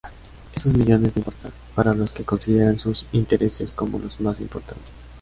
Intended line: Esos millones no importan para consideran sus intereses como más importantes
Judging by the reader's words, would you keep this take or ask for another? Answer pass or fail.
fail